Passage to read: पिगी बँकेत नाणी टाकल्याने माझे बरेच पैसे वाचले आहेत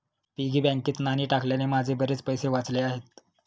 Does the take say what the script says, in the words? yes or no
yes